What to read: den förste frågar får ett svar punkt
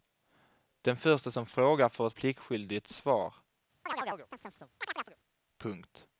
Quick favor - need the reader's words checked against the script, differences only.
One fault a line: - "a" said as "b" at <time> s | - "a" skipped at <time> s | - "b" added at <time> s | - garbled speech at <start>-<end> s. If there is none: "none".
- "som" added at 1.3 s
- "pliktskyldigt" added at 2.1 s